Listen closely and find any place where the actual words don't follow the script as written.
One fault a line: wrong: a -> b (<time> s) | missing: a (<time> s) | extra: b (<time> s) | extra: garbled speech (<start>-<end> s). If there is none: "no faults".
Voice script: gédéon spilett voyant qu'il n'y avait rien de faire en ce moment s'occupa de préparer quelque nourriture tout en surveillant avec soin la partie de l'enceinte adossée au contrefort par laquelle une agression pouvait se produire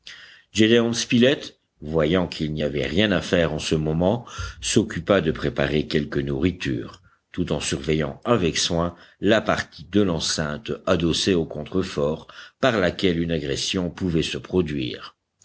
wrong: de -> à (3.1 s)